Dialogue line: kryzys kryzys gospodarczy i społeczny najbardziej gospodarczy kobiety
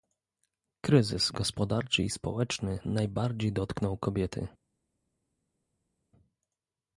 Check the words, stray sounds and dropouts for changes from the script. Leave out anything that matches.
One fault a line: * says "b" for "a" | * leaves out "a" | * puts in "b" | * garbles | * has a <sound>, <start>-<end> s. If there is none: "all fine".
* leaves out "kryzys"
* says "dotknął" for "gospodarczy"